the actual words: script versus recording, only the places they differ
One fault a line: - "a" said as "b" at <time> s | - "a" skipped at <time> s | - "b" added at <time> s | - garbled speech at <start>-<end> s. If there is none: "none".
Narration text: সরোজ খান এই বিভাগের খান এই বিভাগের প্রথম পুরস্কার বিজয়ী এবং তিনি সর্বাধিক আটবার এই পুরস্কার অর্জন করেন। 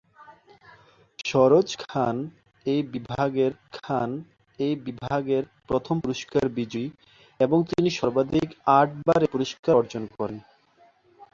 none